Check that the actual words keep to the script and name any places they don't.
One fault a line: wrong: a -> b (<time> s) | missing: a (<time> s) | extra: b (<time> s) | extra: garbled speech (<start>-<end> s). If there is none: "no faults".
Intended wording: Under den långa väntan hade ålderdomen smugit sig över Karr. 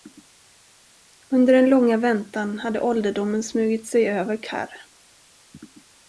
no faults